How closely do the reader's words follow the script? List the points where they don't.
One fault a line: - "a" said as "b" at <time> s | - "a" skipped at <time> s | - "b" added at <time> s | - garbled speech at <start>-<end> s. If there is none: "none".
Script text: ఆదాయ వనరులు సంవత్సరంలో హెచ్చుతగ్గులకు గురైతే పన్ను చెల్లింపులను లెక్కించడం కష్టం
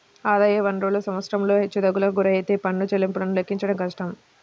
none